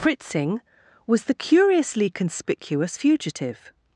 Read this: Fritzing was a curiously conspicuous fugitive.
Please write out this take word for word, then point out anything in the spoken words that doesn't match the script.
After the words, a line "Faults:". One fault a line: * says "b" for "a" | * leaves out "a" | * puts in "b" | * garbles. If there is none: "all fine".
Fritzing was the curiously conspicuous fugitive.
Faults:
* says "the" for "a"